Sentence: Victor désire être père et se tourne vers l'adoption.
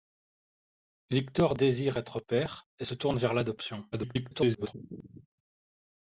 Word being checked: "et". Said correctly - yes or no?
yes